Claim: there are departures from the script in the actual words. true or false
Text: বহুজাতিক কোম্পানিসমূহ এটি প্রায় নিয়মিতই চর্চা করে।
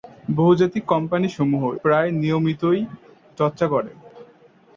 true